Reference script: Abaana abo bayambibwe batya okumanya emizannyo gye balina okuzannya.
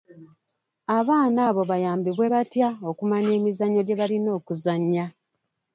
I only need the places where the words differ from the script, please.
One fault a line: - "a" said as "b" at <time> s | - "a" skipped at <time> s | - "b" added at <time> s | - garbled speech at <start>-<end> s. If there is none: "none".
none